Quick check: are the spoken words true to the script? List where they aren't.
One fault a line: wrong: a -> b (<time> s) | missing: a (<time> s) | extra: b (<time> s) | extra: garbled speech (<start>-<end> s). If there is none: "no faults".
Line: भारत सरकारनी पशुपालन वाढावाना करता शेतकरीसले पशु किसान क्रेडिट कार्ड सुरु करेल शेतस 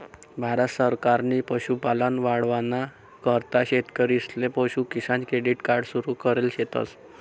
no faults